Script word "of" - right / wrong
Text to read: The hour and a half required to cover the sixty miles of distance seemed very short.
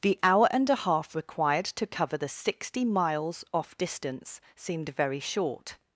wrong